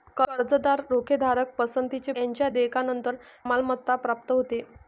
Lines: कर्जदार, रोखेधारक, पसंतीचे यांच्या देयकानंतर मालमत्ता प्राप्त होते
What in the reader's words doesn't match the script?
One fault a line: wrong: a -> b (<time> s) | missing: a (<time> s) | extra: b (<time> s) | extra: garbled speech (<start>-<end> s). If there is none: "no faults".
no faults